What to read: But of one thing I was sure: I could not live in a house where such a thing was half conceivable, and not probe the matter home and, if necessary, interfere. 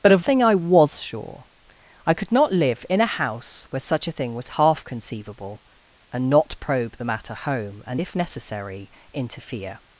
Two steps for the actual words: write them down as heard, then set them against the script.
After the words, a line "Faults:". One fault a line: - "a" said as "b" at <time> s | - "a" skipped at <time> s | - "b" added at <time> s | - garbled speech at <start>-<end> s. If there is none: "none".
But of thing I was sure: I could not live in a house where such a thing was half conceivable, and not probe the matter home and, if necessary, interfere.
Faults:
- "one" skipped at 0.2 s